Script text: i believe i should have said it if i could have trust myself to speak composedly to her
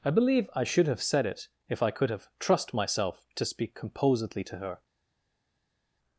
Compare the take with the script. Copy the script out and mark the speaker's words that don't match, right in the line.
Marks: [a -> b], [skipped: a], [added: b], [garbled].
i believe i should have said it if i could have trust myself to speak composedly to her